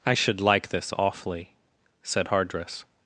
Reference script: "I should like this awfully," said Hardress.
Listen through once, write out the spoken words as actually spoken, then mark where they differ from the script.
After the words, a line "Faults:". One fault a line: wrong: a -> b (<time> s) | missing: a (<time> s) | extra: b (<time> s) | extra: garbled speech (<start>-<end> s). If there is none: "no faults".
"I should like this awfully," said Hardress.
Faults:
no faults